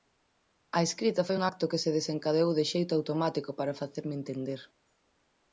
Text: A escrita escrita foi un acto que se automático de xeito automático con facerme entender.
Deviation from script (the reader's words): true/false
true